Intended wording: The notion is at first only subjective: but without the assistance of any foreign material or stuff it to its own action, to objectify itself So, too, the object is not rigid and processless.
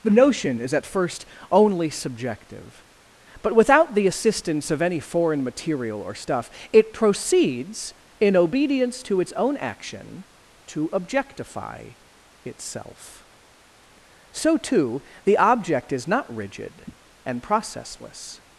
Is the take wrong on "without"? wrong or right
right